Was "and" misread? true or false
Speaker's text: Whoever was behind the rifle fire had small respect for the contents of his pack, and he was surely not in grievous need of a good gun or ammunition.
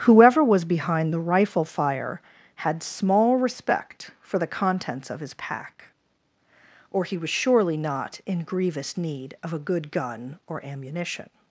true